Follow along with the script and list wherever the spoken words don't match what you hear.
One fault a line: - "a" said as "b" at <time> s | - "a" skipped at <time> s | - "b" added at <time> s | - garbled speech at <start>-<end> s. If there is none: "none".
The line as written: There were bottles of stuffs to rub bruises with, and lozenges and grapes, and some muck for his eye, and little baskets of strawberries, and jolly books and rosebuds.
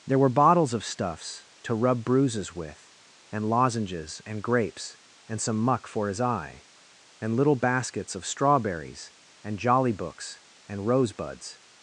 none